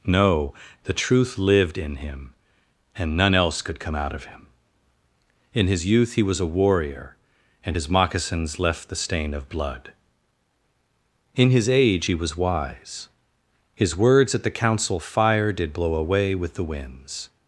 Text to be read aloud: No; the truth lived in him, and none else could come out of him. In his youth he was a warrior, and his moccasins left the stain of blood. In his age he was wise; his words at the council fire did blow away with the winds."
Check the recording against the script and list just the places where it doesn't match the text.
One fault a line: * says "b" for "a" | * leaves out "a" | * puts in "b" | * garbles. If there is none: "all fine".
all fine